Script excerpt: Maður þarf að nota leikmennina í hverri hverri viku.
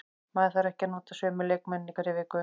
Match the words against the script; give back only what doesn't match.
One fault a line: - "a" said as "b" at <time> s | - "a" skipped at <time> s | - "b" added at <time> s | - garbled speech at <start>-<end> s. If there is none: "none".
- "ekki" added at 0.7 s
- "sömu" added at 1.2 s
- "hverri" skipped at 2.1 s